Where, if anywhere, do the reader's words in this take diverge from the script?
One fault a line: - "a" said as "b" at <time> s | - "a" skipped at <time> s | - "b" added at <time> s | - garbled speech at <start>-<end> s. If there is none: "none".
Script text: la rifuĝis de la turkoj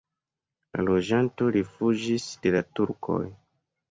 - "loĝantoj" added at 0.8 s